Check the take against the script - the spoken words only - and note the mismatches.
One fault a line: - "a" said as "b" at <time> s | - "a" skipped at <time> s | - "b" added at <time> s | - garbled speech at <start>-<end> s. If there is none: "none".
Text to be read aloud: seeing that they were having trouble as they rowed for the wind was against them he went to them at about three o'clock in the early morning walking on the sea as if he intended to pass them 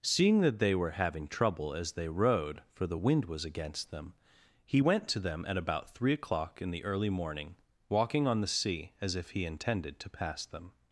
none